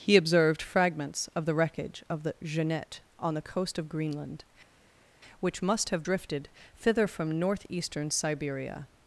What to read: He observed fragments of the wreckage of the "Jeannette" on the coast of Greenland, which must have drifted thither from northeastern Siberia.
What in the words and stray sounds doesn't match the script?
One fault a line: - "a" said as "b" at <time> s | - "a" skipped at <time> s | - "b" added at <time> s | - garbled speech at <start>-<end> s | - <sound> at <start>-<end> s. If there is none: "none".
none